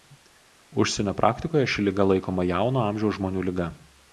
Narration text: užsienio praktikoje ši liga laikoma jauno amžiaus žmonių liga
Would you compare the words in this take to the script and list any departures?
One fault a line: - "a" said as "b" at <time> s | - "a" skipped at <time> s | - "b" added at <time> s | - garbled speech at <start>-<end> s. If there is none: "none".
none